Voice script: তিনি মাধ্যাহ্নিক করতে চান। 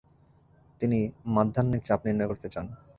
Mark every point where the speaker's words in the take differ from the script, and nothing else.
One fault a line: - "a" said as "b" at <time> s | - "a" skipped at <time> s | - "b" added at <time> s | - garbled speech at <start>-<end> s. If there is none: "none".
- "চাপ নির্ণয়" added at 1.9 s